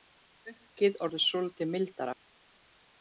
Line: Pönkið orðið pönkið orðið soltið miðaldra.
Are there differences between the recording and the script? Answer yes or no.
yes